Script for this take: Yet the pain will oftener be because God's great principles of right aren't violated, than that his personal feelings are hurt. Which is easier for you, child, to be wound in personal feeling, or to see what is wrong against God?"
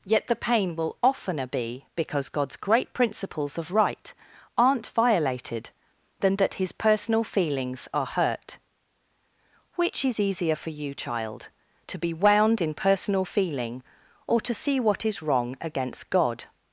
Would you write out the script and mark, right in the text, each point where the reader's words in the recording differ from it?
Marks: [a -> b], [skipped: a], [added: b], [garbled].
Yet the pain will oftener be because God's great principles of right aren't violated, than that his personal feelings are hurt. Which is easier for you, child, to be wound in personal feeling, or to see what is wrong against God?"